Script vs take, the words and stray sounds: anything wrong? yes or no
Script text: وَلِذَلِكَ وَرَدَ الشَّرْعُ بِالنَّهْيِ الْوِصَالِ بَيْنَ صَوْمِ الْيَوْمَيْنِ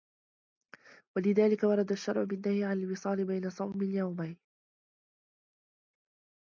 yes